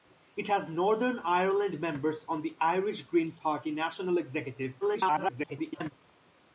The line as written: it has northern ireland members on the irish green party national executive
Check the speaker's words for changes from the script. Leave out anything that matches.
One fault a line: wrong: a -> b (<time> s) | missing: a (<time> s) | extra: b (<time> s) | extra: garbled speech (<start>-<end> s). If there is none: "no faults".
extra: garbled speech (4.8-5.9 s)